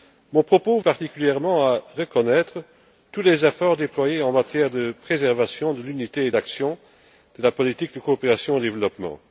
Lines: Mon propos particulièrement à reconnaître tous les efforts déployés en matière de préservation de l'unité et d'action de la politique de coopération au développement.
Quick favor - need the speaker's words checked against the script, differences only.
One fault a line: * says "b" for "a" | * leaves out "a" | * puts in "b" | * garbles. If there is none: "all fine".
all fine